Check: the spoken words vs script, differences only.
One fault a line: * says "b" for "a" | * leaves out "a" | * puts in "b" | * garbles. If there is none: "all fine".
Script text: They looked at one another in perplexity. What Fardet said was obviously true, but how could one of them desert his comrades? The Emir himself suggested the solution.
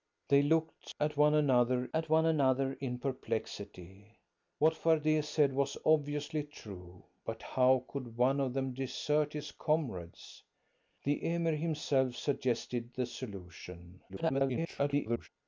* puts in "at one another"
* garbles